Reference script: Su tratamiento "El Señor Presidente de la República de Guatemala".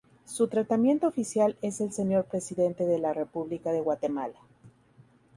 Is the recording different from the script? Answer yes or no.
yes